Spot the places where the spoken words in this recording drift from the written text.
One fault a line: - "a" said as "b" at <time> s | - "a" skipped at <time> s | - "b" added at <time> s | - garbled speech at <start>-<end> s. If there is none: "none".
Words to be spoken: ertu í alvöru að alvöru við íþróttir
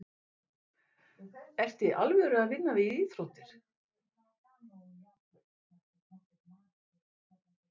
- "alvöru" said as "vinna" at 2.5 s